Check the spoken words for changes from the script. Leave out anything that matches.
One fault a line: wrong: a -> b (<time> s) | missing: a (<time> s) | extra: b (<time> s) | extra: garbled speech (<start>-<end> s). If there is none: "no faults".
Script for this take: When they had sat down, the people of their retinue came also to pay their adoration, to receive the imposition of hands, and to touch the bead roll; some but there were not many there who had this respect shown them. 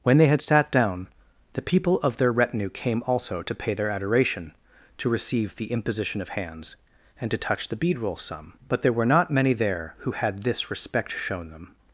no faults